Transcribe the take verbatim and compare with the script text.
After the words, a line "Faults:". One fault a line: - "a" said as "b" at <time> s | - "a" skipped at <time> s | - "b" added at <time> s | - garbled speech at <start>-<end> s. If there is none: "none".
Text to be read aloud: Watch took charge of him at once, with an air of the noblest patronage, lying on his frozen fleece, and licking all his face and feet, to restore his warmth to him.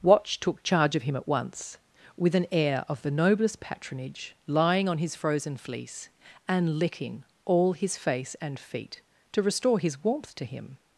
Watch took charge of him at once, with an air of the noblest patronage, lying on his frozen fleece, and licking all his face and feet, to restore his warmth to him.
Faults:
none